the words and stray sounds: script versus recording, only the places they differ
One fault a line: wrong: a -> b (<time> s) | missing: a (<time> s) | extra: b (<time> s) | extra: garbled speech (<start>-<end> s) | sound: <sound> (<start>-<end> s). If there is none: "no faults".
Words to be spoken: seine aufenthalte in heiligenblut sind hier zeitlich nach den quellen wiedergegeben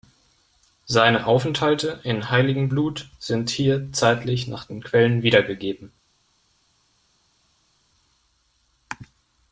no faults